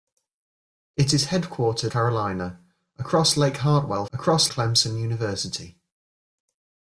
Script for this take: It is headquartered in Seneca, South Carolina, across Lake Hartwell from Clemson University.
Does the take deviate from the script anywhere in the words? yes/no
yes